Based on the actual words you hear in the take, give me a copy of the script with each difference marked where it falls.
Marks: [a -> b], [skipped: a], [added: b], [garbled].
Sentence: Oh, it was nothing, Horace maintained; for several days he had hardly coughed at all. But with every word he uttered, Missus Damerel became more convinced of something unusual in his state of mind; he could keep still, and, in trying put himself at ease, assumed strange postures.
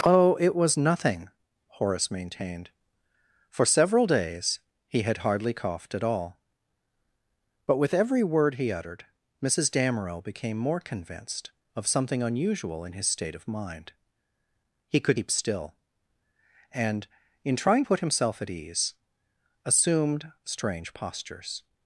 Oh, it was nothing, Horace maintained; for several days he had hardly coughed at all. But with every word he uttered, Missus Damerel became more convinced of something unusual in his state of mind; he could keep still, and, in trying put himself at ease, assumed strange postures.